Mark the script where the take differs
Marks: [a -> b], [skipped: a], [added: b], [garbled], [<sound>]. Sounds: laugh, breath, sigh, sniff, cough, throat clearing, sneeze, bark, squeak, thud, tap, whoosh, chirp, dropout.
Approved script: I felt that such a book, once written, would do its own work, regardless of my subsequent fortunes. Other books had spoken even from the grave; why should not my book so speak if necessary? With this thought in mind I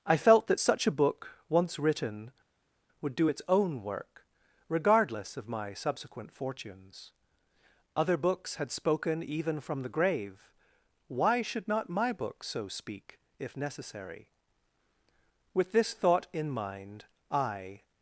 I felt that such a book, once written, would do its own work, regardless of my subsequent fortunes. Other books had spoken even from the grave; why should not my book so speak if necessary? With this thought in mind I